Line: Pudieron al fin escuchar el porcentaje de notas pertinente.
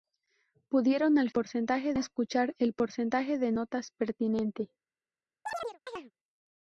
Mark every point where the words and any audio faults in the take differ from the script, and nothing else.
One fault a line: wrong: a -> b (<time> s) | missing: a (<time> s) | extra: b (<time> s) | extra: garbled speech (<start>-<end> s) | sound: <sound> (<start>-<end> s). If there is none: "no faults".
wrong: fin -> porcentaje (1.3 s)
sound: chirp (5.5-6.1 s)